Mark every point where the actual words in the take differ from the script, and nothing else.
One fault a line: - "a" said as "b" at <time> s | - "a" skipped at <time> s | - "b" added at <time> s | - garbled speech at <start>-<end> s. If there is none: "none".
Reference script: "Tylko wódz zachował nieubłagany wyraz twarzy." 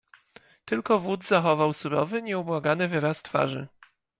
- "surowy" added at 1.7 s